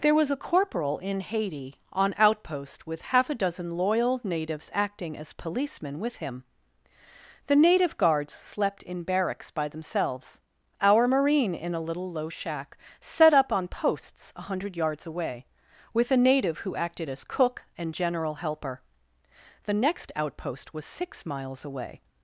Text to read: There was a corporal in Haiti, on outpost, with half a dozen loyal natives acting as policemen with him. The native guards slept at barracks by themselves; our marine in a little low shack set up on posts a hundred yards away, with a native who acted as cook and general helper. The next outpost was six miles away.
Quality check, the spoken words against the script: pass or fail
fail